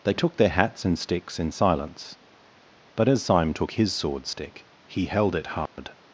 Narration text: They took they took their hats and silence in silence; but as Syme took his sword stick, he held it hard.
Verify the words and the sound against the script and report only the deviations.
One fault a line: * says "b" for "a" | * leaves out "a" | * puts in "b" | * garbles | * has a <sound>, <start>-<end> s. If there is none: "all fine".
* leaves out "they took"
* says "sticks" for "silence"
* has a dropout, 5.7-5.8 s